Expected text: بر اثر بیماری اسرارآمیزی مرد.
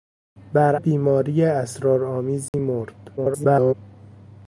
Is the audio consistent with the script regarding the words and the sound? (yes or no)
no